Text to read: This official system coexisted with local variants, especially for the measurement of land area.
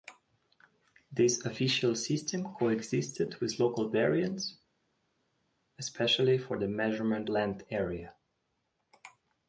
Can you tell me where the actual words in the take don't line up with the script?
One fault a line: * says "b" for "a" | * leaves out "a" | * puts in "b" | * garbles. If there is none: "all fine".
* leaves out "of"